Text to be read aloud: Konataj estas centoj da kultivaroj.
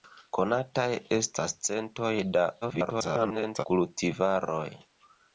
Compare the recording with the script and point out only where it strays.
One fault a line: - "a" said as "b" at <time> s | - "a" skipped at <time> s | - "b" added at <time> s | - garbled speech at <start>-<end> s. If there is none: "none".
- garbled speech at 2.6-3.7 s